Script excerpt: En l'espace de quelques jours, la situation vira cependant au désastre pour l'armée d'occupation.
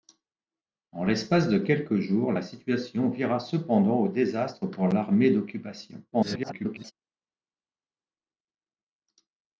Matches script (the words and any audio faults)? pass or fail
fail